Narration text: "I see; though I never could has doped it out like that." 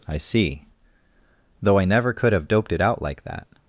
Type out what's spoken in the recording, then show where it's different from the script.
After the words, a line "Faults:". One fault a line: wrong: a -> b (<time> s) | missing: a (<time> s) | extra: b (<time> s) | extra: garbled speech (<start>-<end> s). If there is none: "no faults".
"I see; though I never could have doped it out like that."
Faults:
wrong: has -> have (2.3 s)